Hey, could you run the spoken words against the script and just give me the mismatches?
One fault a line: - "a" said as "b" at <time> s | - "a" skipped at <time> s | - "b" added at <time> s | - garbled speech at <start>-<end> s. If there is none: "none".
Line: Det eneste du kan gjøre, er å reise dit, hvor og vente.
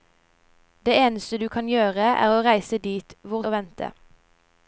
none